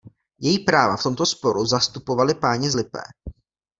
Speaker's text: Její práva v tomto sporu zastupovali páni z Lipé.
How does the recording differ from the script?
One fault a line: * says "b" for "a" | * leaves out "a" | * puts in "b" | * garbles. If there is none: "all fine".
all fine